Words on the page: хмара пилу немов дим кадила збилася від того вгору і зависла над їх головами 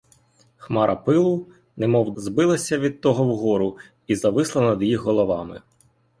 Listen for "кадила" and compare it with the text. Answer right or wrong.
wrong